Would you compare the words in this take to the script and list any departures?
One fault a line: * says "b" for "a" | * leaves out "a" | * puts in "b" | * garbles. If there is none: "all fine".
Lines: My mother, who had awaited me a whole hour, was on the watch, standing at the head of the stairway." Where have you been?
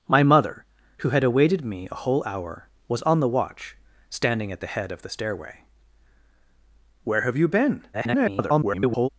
* garbles